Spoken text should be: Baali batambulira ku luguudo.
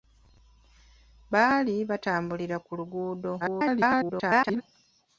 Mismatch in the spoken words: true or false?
true